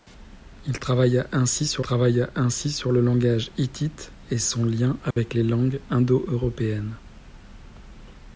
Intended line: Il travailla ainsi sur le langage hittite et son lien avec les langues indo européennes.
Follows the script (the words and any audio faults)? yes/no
no